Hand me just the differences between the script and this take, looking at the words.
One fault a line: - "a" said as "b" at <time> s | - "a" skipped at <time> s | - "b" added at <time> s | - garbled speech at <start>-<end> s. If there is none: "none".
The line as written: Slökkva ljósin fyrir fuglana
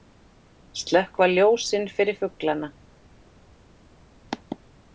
none